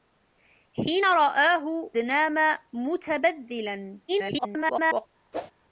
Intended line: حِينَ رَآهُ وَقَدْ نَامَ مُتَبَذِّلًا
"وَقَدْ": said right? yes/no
no